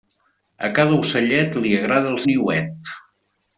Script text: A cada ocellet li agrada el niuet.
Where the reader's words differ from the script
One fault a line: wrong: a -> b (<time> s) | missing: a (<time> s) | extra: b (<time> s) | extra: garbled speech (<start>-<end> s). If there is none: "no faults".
no faults